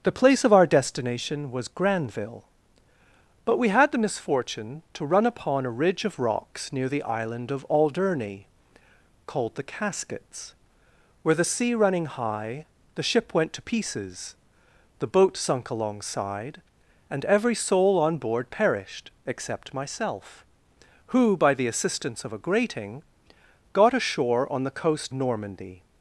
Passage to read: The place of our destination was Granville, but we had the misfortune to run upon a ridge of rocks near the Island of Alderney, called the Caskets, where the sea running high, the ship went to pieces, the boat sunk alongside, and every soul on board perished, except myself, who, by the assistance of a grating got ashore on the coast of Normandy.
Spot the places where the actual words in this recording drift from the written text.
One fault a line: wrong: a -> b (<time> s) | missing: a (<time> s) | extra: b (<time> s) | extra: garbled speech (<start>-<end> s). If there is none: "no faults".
missing: of (25.1 s)